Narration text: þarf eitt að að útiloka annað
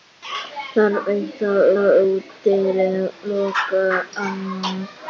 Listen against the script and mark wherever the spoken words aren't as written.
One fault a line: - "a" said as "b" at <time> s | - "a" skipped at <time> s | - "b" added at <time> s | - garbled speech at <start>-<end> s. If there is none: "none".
none